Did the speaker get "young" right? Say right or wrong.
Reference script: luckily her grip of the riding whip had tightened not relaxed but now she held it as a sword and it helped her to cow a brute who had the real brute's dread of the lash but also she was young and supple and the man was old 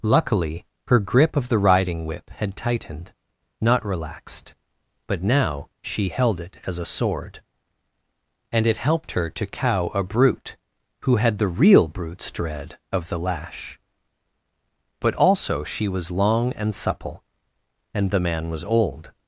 wrong